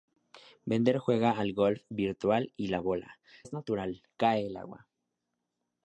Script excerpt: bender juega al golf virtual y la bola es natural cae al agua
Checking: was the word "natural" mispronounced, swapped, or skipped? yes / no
no